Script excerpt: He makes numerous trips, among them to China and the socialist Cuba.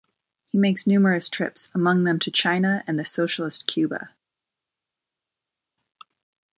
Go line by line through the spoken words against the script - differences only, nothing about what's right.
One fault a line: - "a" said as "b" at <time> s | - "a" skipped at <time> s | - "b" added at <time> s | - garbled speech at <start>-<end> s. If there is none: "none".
none